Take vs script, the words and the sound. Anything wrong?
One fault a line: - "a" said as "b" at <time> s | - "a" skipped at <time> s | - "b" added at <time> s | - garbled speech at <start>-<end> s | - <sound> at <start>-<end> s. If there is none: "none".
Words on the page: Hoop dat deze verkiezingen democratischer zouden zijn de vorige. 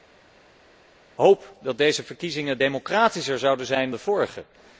none